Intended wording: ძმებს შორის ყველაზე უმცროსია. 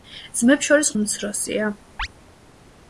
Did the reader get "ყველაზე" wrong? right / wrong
wrong